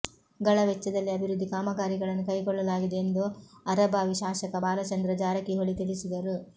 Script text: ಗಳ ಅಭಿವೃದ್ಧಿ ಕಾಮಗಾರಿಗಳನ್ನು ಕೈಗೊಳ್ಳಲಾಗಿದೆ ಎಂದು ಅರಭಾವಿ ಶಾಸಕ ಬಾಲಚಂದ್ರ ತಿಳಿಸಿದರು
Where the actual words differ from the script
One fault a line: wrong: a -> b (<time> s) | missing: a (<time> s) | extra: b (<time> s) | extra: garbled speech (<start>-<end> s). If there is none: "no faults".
extra: ವೆಚ್ಚದಲ್ಲಿ (0.7 s)
extra: ಜಾರಕಿಹೊಳಿ (5.2 s)